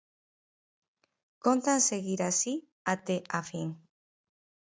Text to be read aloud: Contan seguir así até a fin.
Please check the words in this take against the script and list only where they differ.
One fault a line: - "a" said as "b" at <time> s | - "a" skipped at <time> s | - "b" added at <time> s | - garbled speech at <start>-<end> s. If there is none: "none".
none